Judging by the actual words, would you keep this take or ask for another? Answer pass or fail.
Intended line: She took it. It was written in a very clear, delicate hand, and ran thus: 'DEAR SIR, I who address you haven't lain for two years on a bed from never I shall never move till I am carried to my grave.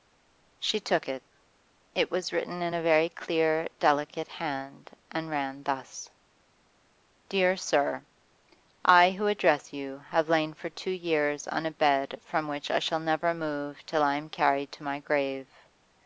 fail